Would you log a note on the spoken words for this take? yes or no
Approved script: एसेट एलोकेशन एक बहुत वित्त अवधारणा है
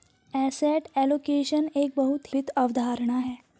no